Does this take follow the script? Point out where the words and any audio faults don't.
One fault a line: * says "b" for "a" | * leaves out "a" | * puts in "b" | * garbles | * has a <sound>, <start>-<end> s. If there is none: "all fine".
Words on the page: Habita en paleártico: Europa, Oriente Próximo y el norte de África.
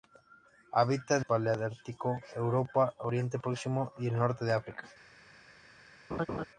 * has a laugh, 6.1-6.4 s